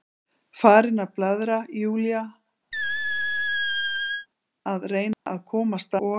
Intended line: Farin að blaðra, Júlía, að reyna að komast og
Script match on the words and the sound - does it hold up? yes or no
no